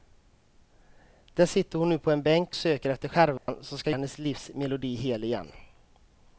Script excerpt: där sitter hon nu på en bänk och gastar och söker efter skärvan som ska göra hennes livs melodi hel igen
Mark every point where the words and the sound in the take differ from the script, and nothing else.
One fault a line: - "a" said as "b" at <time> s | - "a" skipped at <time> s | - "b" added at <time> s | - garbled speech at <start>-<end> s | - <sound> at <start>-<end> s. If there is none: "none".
- "och gastar och" skipped at 2.5 s
- dropout at 3.4-3.5 s
- "göra" skipped at 3.9 s